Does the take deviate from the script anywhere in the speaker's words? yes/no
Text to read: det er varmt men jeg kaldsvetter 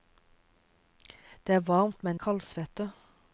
yes